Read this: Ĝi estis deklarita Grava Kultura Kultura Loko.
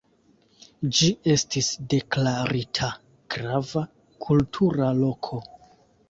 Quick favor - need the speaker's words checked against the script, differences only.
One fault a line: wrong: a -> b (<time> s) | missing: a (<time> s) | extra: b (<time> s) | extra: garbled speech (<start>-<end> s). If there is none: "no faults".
missing: Kultura (4.9 s)